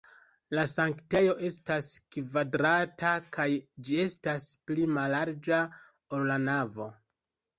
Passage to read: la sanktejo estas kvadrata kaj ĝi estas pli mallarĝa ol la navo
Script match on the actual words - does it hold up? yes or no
yes